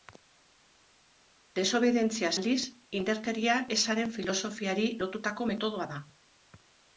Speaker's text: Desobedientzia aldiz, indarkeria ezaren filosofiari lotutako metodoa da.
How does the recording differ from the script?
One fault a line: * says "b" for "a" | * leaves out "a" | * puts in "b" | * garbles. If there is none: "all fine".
all fine